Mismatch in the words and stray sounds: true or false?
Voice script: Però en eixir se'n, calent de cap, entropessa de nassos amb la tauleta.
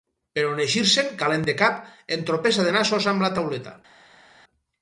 false